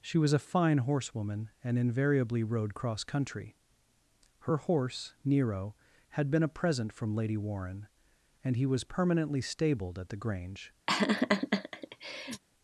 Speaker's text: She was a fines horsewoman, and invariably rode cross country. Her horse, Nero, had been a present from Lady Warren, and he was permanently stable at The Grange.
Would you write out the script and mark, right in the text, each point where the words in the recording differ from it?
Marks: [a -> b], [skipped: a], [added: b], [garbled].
She was a [fines -> fine] horsewoman, and invariably rode cross country. Her horse, Nero, had been a present from Lady Warren, and he was permanently [stable -> stabled] at The Grange.